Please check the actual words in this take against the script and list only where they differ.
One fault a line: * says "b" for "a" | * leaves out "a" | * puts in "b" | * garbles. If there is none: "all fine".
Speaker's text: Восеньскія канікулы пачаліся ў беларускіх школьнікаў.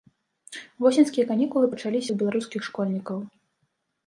all fine